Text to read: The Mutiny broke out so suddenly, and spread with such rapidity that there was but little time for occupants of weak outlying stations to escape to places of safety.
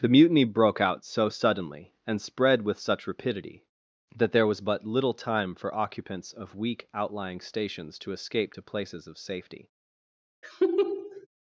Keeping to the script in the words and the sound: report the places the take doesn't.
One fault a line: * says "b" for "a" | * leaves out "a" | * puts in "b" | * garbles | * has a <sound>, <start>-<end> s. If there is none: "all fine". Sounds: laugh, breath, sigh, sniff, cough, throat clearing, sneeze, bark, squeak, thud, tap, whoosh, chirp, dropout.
* has a laugh, 10.4-11.3 s